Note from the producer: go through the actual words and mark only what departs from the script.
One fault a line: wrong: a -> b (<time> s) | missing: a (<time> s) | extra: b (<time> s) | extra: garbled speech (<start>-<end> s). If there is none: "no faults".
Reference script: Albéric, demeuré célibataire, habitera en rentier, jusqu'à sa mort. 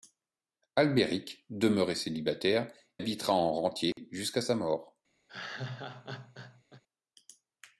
no faults